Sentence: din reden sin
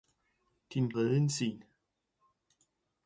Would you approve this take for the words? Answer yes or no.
yes